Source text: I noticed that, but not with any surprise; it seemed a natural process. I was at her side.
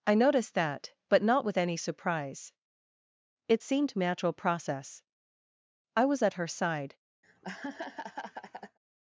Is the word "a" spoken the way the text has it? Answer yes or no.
no